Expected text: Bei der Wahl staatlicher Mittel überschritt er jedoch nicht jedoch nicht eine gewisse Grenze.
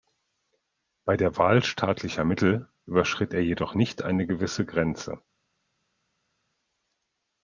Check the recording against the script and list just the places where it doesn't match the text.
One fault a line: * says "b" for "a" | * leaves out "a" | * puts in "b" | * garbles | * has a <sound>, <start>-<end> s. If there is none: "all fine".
* leaves out "jedoch nicht"